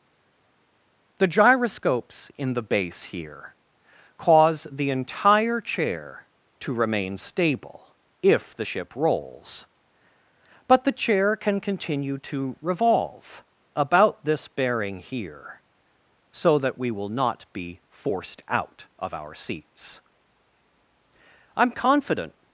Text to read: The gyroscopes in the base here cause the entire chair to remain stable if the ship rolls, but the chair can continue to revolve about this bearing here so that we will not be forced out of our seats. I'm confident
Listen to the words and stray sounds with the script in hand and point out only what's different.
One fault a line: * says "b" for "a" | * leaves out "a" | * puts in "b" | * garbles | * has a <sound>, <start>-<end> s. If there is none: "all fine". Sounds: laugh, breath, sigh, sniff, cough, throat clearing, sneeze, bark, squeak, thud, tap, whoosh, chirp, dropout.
all fine